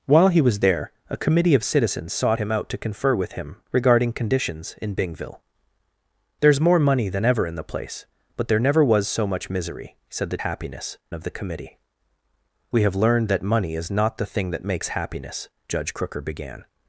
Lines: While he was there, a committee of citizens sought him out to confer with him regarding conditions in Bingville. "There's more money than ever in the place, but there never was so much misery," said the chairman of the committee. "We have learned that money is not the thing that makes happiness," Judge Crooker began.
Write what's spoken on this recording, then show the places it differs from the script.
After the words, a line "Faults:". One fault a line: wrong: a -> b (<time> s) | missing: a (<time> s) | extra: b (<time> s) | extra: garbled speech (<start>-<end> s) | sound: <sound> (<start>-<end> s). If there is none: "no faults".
While he was there, a committee of citizens sought him out to confer with him regarding conditions in Bingville. "There's more money than ever in the place, but there never was so much misery," said the happiness of the committee. "We have learned that money is not the thing that makes happiness," Judge Crooker began.
Faults:
wrong: chairman -> happiness (10.4 s)